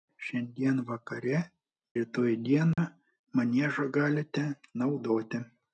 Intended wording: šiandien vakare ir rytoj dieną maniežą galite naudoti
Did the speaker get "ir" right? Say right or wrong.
wrong